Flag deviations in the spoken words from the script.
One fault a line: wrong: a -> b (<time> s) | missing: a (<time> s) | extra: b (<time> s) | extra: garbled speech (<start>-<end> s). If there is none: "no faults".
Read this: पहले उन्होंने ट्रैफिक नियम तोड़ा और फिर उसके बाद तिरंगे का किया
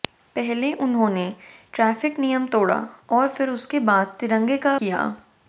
no faults